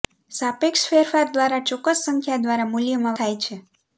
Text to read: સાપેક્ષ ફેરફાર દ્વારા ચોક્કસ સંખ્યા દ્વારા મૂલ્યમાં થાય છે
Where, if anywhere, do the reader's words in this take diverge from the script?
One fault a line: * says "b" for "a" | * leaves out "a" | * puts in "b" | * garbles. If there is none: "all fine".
all fine